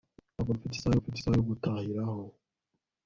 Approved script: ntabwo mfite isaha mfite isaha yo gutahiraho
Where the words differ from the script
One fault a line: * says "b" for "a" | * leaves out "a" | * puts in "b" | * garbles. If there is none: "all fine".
all fine